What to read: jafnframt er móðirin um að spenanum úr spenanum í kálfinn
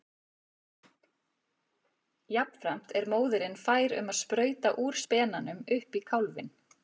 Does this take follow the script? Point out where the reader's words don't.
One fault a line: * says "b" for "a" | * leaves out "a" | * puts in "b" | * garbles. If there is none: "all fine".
* puts in "fær"
* says "sprauta" for "spenanum"
* puts in "upp"